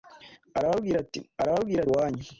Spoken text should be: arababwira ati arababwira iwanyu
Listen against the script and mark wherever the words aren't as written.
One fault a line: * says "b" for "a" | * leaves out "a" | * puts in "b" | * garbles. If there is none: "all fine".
all fine